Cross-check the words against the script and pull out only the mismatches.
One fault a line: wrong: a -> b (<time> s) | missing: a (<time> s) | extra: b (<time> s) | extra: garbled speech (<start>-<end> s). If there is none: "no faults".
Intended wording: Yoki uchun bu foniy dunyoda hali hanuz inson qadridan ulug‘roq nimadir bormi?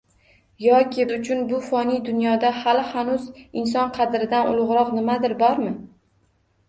no faults